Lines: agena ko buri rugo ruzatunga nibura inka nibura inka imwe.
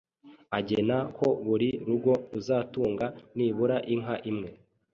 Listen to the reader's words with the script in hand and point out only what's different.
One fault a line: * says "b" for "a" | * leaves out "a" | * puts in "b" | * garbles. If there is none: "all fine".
* leaves out "nibura inka"